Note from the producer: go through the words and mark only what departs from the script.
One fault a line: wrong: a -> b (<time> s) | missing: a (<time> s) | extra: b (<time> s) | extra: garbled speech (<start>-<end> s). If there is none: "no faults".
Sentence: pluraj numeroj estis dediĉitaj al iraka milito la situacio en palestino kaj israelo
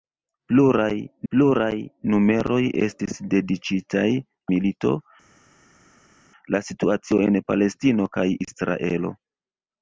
extra: pluraj (1.3 s)
missing: al iraka (4.0 s)